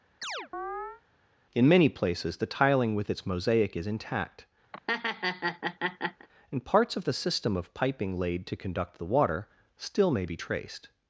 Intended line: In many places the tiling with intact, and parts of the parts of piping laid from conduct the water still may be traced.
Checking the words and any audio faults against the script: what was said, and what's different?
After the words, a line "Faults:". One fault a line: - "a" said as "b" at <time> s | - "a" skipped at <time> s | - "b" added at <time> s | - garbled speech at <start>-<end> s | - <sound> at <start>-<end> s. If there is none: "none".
In many places the tiling with its mosaic is intact, and parts of the system of piping laid to conduct the water still may be traced.
Faults:
- chirp at 0.2-1.0 s
- "its mosaic is" added at 3.1 s
- laugh at 4.7-6.3 s
- "parts" said as "system" at 7.1 s
- "from" said as "to" at 8.5 s